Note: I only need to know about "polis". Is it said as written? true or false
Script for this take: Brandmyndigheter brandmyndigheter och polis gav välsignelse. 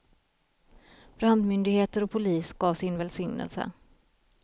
true